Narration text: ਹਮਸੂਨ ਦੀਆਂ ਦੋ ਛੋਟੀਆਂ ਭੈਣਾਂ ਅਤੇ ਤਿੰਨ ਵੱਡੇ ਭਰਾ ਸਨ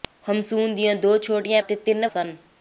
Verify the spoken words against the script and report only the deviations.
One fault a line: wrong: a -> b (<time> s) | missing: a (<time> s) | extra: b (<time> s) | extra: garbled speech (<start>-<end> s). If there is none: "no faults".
missing: ਭੈਣਾਂ (1.6 s)
missing: ਵੱਡੇ ਭਰਾ (2.1 s)